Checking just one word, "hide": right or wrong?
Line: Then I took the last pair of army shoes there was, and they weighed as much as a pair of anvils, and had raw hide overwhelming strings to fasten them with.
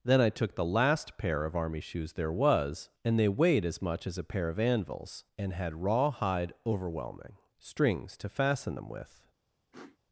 right